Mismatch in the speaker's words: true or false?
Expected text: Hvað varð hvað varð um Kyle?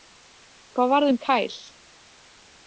true